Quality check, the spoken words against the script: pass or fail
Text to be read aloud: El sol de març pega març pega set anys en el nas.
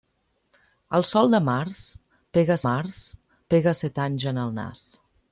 pass